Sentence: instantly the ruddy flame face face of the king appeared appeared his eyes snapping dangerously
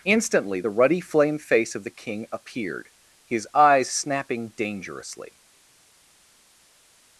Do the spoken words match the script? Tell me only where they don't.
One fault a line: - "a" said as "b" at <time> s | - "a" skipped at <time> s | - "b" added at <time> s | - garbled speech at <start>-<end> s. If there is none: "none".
- "face" skipped at 1.8 s
- "appeared" skipped at 2.9 s